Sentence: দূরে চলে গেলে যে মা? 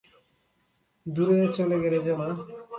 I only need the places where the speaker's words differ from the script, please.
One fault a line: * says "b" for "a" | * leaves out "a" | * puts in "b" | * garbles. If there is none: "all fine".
all fine